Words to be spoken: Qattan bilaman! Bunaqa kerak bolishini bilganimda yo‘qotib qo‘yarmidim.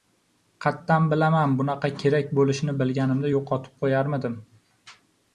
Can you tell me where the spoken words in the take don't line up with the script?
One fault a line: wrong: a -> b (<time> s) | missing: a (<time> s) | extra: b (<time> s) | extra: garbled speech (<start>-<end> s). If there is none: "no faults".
no faults